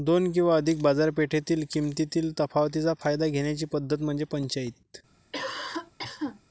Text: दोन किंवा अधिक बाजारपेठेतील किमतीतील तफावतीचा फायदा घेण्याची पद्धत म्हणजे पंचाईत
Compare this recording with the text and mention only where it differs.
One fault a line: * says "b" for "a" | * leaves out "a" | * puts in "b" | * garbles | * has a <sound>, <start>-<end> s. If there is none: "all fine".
* has a cough, 5.3-6.4 s